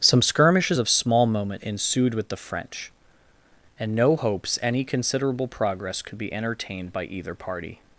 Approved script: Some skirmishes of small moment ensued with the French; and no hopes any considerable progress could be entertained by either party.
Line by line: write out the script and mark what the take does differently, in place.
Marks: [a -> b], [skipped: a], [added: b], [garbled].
Some skirmishes of small moment ensued with the French; and no hopes any considerable progress could be entertained by either party.